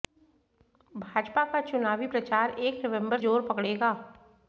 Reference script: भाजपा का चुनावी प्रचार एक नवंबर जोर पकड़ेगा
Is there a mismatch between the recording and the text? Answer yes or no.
no